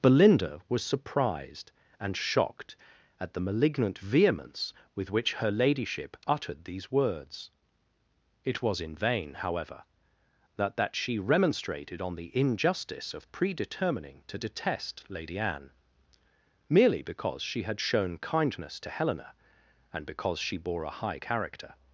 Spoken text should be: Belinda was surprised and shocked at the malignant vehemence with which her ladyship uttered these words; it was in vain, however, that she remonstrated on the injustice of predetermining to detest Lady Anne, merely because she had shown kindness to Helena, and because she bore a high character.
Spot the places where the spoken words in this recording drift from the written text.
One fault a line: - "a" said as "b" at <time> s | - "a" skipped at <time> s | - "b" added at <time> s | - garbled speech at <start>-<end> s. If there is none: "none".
- "that" added at 10.8 s